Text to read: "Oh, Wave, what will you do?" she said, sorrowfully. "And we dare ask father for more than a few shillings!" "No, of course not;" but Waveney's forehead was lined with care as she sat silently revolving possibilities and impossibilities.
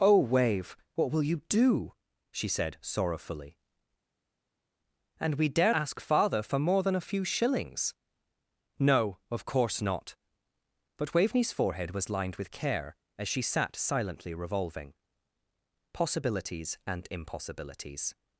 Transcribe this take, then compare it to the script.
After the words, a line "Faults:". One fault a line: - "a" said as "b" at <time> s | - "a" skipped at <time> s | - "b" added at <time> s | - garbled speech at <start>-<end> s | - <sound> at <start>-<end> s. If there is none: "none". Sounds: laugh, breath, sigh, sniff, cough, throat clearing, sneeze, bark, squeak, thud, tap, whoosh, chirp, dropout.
"Oh, Wave, what will you do?" she said, sorrowfully. "And we dare ask father for more than a few shillings!" "No, of course not;" but Waveney's forehead was lined with care as she sat silently revolving possibilities and impossibilities.
Faults:
none